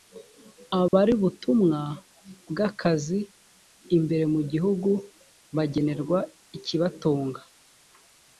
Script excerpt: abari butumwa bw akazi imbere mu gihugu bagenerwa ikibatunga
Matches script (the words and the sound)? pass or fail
fail